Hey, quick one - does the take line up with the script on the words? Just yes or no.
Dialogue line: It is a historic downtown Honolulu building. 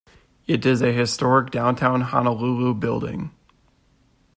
yes